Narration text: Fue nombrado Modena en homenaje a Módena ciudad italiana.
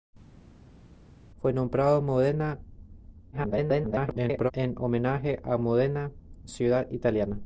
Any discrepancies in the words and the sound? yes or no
yes